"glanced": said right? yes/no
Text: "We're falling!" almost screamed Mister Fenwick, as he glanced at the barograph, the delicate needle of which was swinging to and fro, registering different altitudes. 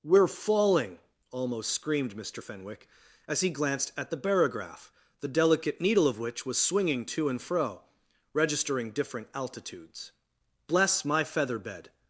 yes